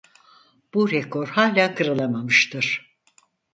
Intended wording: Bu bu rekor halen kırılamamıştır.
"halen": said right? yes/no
yes